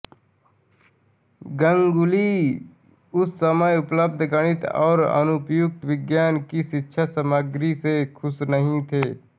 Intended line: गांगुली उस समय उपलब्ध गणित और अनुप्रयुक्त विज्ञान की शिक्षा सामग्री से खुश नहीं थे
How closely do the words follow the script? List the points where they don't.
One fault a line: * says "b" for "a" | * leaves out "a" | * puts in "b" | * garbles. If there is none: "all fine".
all fine